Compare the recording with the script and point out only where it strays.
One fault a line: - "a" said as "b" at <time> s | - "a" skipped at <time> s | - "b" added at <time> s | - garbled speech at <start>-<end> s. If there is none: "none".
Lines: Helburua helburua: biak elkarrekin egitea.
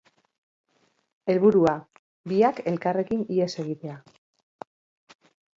- "helburua" skipped at 1.8 s
- "ihes" added at 3.4 s